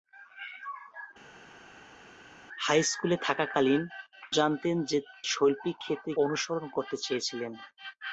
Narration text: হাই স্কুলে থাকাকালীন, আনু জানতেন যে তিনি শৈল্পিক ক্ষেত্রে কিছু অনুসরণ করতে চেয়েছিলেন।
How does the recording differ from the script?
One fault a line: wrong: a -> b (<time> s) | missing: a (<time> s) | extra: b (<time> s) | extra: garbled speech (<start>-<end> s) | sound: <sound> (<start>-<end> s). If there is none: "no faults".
missing: আনু (3.8 s)
missing: তিনি (5.0 s)
missing: কিছু (6.1 s)